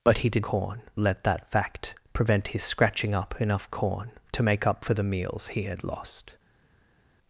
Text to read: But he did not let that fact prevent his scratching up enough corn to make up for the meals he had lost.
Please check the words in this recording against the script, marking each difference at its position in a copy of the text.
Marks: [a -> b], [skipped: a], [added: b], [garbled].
But he did [not -> corn] let that fact prevent his scratching up enough corn to make up for the meals he had lost.